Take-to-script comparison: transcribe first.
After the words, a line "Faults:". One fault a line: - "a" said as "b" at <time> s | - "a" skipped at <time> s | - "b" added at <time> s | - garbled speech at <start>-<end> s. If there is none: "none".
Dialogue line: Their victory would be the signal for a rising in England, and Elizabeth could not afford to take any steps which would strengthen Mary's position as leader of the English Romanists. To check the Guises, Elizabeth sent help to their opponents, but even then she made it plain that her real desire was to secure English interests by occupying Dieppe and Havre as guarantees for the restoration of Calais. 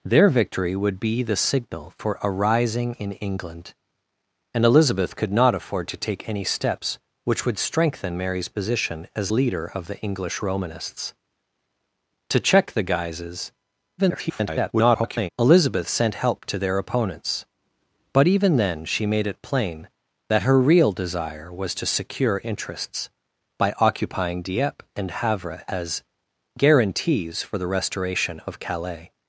Their victory would be the signal for a rising in England, and Elizabeth could not afford to take any steps which would strengthen Mary's position as leader of the English Romanists. To check the Guises, [garbled] Elizabeth sent help to their opponents, but even then she made it plain that her real desire was to secure Interests by occupying Dieppe and Havre as guarantees for the restoration of Calais.
Faults:
- garbled speech at 14.0-15.3 s
- "English" skipped at 22.4 s